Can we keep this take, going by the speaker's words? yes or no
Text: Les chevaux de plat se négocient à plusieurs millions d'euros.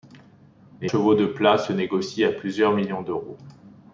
yes